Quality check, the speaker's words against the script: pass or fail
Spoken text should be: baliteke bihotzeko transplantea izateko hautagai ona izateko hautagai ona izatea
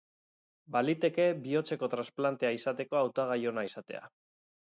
fail